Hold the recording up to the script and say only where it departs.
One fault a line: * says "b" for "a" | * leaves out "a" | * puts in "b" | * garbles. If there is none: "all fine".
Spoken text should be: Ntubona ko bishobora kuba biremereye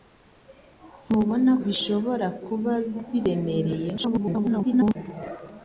* leaves out "ko"
* garbles